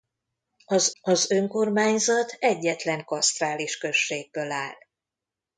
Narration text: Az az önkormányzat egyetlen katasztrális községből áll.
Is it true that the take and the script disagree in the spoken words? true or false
false